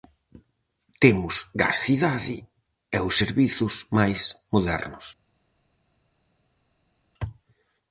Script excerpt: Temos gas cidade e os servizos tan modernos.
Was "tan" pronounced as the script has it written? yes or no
no